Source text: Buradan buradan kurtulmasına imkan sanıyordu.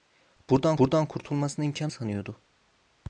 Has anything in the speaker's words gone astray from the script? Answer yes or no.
no